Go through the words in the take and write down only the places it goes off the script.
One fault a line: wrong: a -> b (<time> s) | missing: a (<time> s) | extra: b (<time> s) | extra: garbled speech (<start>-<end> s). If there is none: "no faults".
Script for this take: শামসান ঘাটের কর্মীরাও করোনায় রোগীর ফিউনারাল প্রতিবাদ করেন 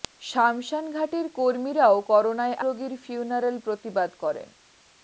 no faults